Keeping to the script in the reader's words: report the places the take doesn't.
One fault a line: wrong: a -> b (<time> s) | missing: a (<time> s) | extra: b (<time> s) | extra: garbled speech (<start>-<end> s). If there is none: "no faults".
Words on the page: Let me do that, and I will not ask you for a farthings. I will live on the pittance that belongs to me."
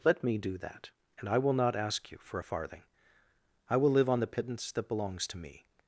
wrong: farthings -> farthing (2.4 s)